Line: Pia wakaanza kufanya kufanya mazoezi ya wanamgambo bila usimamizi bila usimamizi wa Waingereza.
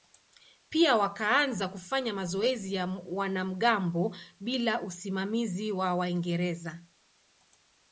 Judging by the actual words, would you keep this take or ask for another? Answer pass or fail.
fail